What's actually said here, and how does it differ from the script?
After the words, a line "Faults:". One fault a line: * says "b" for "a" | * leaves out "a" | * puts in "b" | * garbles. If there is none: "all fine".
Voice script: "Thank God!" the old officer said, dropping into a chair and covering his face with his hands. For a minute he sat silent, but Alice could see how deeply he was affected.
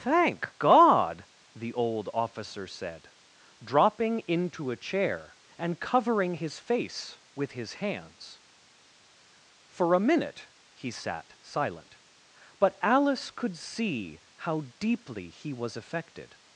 "Thank God!" the old officer said, dropping into a chair and covering his face with his hands. For a minute he sat silent, but Alice could see how deeply he was affected.
Faults:
all fine